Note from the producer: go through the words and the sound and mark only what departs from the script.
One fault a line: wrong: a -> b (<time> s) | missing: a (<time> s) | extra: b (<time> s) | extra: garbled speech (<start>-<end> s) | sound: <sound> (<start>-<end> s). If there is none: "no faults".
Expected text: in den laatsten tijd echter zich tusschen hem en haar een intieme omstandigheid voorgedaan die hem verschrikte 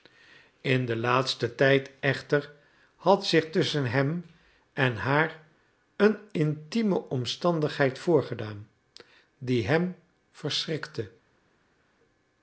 extra: had (3.0 s)